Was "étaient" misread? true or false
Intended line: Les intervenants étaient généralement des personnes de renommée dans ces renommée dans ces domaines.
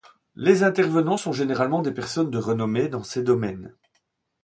true